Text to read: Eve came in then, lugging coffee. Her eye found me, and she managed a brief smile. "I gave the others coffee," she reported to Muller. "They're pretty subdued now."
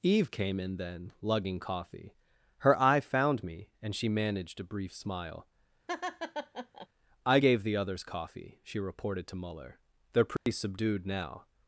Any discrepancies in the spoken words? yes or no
no